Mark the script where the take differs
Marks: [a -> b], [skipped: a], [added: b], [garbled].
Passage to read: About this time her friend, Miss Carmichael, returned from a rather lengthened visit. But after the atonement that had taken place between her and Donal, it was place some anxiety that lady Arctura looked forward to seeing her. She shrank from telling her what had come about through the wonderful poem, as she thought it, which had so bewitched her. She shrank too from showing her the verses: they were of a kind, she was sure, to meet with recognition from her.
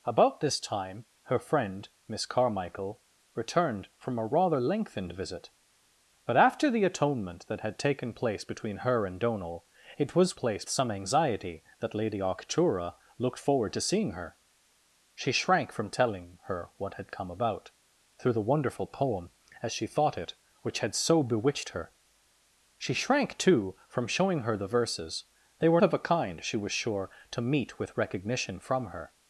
About this time her friend, Miss Carmichael, returned from a rather lengthened visit. But after the atonement that had taken place between her and Donal, it was place some anxiety that lady Arctura looked forward to seeing her. She shrank from telling her what had come about through the wonderful poem, as she thought it, which had so bewitched her. She shrank too from showing her the verses: they were of a kind, she was sure, to meet with recognition from her.